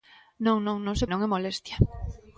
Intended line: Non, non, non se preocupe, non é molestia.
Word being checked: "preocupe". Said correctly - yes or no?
no